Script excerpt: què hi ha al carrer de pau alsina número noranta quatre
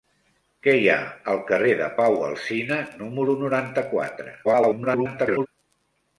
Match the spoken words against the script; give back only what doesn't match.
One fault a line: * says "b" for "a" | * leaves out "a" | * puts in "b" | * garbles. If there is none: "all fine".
* garbles